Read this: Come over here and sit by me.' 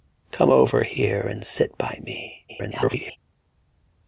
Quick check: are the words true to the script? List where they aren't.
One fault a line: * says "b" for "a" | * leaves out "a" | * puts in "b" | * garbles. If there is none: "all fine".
* garbles